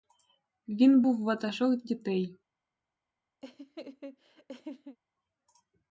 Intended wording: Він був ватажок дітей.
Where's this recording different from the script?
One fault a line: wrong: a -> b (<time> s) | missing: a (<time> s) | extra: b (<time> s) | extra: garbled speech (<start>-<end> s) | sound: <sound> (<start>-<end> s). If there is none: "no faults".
sound: laugh (3.4-5.0 s)